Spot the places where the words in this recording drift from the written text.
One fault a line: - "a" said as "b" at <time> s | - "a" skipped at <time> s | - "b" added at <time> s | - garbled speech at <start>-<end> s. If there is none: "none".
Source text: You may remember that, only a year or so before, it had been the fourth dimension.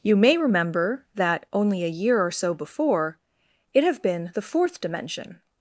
- "had" said as "have" at 3.8 s